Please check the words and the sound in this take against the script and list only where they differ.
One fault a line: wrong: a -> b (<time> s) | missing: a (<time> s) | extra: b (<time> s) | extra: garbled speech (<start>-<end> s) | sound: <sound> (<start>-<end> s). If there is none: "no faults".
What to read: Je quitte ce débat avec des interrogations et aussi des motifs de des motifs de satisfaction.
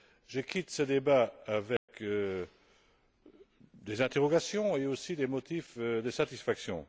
sound: dropout (1.8-1.9 s)
missing: des motifs de (6.1 s)